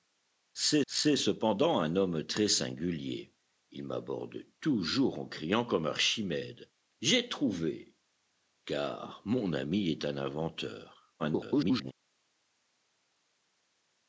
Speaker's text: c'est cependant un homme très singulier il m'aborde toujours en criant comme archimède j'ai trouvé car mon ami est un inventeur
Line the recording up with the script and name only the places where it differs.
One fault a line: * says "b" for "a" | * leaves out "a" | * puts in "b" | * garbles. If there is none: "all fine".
* puts in "c'est"
* garbles